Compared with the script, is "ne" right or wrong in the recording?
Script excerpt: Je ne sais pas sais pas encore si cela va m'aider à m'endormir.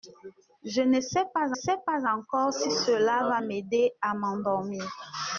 right